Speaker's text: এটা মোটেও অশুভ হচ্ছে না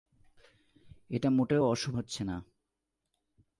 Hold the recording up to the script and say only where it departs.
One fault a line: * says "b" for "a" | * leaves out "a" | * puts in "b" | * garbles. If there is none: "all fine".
all fine